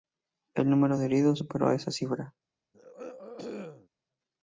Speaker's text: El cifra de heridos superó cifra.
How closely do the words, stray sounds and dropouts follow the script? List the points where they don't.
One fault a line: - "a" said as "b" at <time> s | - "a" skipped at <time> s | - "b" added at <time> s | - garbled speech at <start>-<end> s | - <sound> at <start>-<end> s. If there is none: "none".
- "cifra" said as "número" at 0.7 s
- "esa" added at 1.7 s
- throat clearing at 2.7-3.9 s